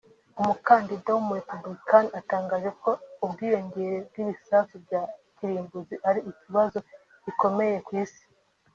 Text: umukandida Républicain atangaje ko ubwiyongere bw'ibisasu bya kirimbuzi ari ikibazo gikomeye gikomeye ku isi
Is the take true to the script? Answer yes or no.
no